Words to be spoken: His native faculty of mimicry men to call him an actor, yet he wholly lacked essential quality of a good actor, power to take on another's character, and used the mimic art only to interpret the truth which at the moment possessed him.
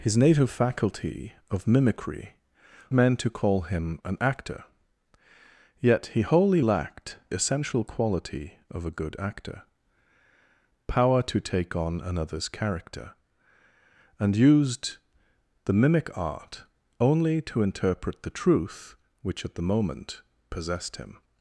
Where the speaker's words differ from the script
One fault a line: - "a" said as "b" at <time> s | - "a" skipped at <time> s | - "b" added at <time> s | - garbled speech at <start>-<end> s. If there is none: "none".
none